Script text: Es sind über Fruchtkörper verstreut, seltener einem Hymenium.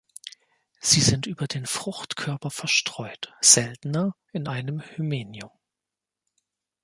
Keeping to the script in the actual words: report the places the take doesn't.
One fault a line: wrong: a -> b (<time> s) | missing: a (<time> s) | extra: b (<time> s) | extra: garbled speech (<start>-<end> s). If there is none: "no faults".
wrong: Es -> Sie (0.8 s)
extra: den (1.4 s)
extra: in (4.3 s)